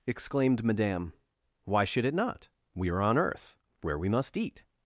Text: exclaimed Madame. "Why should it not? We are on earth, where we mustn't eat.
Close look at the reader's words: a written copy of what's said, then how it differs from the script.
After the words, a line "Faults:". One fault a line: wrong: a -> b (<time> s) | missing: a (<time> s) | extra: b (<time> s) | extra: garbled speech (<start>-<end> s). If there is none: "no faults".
exclaimed Madame. "Why should it not? We are on earth, where we must eat.
Faults:
wrong: mustn't -> must (4.1 s)